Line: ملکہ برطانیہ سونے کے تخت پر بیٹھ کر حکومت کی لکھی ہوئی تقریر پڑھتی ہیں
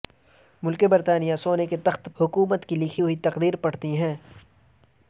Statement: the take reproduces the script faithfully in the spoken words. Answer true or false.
false